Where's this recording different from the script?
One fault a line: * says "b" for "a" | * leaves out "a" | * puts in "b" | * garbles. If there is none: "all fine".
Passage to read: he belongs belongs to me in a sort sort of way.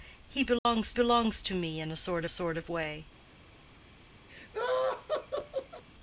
all fine